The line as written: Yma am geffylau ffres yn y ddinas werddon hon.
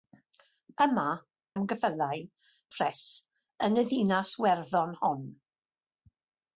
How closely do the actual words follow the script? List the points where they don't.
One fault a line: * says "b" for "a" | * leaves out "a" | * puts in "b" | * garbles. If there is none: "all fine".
all fine